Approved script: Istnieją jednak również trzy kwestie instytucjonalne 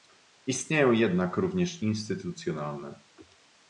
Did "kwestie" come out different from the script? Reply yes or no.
yes